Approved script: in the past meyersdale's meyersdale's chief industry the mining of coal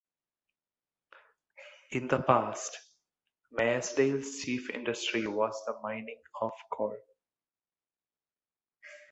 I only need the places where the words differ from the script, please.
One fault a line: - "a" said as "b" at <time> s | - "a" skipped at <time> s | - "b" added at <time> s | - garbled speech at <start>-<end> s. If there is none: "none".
- "meyersdale's" skipped at 4.4 s
- "was" added at 5.3 s